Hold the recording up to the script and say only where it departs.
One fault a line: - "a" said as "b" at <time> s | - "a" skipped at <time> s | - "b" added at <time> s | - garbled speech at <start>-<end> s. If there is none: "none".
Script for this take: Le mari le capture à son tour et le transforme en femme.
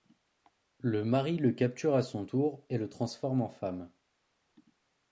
none